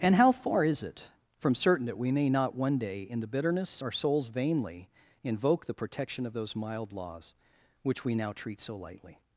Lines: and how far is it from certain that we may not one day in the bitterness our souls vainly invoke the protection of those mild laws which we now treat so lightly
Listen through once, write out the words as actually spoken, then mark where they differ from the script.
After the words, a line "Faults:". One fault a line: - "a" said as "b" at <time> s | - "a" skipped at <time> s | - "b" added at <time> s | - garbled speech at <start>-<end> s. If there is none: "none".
and how far is it from certain that we may not one day in the bitterness our souls vainly invoke the protection of those mild laws which we now treat so lightly
Faults:
none